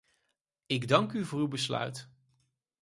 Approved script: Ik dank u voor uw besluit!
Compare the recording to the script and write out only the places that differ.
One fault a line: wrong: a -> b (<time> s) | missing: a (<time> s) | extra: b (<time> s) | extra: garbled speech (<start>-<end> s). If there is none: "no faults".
no faults